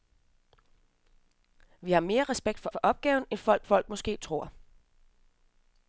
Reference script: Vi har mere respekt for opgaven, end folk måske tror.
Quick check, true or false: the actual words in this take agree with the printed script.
false